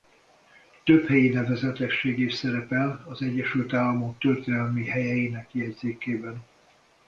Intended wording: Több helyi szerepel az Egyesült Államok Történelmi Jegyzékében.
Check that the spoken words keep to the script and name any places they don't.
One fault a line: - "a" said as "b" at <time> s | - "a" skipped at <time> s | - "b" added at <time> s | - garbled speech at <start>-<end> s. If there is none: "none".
- "nevezetesség is" added at 1.3 s
- "Helyeinek" added at 4.9 s